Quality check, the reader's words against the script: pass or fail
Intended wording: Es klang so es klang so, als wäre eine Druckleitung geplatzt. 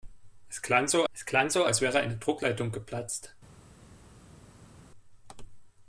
pass